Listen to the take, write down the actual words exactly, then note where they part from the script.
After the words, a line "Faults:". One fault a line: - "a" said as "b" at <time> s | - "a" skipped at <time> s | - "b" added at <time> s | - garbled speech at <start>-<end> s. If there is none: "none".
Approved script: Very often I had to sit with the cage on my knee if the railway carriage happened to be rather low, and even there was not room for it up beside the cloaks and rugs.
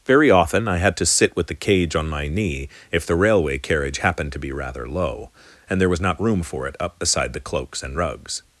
Very often I had to sit with the cage on my knee if the railway carriage happened to be rather low, and there was not room for it up beside the cloaks and rugs.
Faults:
- "even" skipped at 5.8 s